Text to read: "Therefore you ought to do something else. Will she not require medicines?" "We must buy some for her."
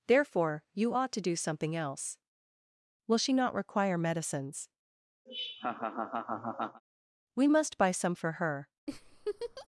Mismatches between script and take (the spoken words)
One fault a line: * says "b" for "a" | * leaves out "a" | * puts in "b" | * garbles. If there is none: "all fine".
all fine